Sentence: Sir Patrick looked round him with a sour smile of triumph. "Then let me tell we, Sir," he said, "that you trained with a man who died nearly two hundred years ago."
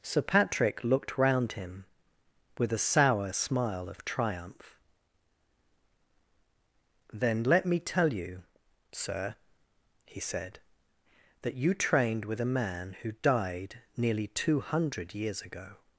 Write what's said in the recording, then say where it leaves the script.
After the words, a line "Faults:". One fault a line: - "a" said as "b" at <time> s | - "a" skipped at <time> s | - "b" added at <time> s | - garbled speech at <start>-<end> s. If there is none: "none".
Sir Patrick looked round him with a sour smile of triumph. "Then let me tell you, Sir," he said, "that you trained with a man who died nearly two hundred years ago."
Faults:
- "we" said as "you" at 8.1 s